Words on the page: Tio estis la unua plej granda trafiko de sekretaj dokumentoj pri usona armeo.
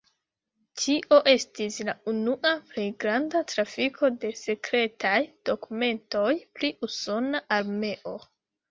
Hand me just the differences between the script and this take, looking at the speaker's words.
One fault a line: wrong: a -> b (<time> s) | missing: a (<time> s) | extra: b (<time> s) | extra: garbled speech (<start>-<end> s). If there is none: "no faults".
no faults